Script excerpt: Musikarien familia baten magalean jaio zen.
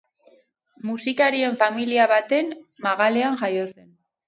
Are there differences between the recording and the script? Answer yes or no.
no